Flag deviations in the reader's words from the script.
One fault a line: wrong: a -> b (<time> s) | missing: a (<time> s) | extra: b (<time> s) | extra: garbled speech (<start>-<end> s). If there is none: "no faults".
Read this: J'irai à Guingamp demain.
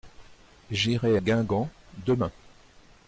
missing: à (1.2 s)